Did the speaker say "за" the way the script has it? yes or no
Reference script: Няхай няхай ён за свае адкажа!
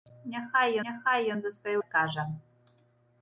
yes